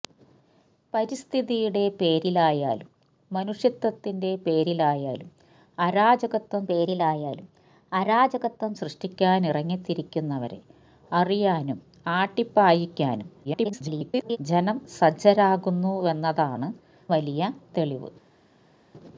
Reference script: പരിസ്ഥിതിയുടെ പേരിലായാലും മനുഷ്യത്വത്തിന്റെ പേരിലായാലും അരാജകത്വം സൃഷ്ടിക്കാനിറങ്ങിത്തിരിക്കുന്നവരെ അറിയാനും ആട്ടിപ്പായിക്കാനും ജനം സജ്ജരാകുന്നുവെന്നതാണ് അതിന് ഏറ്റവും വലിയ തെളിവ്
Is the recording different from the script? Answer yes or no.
yes